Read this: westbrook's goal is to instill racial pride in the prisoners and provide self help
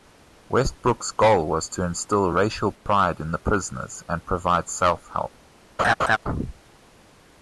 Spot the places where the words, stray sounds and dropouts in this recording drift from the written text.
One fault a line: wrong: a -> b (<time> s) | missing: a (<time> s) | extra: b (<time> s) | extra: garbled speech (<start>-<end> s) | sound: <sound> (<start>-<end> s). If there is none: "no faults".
wrong: is -> was (1.4 s)
sound: dropout (2.8-2.9 s)
sound: laugh (5.8-6.2 s)